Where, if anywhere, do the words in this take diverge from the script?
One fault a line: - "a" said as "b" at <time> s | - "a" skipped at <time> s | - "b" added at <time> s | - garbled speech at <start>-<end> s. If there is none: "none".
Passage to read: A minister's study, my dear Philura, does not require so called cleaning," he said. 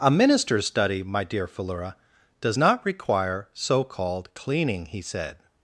none